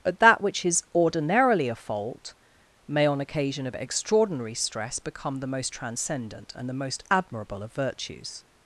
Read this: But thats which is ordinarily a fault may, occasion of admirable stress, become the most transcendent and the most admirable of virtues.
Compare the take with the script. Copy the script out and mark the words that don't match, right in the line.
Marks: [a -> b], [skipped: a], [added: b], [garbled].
But [thats -> that] which is ordinarily a fault may, [added: on] occasion of [admirable -> extraordinary] stress, become the most transcendent and the most admirable of virtues.